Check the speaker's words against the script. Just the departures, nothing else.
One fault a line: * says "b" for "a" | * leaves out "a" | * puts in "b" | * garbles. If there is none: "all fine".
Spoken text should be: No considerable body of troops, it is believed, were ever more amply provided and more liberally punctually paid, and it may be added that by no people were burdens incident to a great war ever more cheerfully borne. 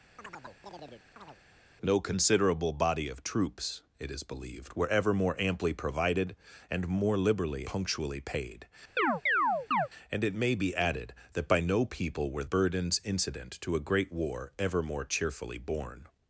all fine